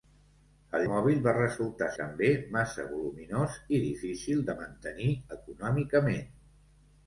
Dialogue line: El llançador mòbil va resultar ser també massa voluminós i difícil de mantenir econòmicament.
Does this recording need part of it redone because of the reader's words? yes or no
yes